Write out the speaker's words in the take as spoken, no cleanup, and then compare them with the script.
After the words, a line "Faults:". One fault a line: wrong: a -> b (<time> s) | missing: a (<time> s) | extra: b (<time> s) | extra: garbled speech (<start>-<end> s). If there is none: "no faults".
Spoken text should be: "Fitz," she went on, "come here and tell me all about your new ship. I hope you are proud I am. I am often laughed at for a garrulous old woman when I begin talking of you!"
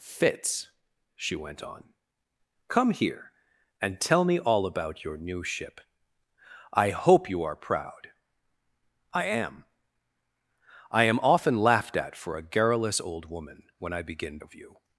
"Fitz," she went on, "come here and tell me all about your new ship. I hope you are proud I am. I am often laughed at for a garrulous old woman when I begin of you!"
Faults:
missing: talking (14.4 s)